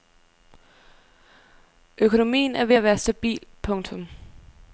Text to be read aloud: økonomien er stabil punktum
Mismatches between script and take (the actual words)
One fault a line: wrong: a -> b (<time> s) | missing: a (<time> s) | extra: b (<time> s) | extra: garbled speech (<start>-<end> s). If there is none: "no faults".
extra: ved at være (2.6 s)